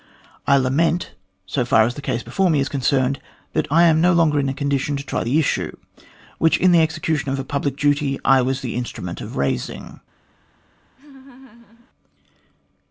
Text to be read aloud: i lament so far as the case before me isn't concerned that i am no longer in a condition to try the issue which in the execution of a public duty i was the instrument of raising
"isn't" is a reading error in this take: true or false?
true